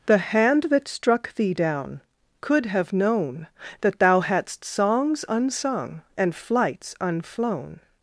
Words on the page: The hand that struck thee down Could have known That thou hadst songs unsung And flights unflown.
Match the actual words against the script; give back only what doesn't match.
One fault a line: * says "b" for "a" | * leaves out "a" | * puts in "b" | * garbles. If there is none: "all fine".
all fine